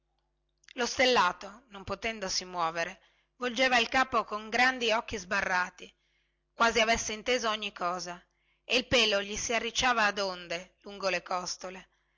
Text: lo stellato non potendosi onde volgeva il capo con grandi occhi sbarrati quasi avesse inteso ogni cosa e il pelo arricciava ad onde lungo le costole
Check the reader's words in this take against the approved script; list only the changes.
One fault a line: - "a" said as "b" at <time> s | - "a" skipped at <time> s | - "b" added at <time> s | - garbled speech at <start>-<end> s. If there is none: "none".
- "onde" said as "muovere" at 2.5 s
- "gli si" added at 9.2 s